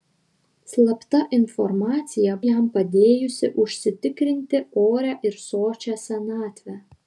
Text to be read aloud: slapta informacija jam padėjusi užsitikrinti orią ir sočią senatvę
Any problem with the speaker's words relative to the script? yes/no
no